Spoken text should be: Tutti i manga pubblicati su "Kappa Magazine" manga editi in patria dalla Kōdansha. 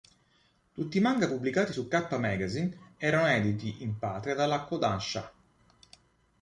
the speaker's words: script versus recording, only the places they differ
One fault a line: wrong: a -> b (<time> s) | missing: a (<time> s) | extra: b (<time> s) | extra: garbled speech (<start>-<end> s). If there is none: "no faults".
wrong: manga -> erano (3.0 s)